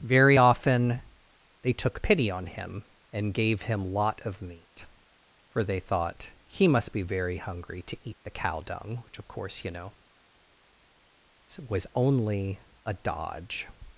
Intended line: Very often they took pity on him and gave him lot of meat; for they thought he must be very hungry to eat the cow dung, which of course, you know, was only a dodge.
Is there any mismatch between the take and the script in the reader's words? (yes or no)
no